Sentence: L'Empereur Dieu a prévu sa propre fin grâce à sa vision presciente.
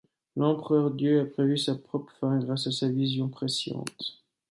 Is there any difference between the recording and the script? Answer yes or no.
no